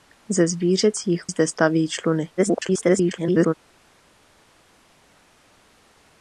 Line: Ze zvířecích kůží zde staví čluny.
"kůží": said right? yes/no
no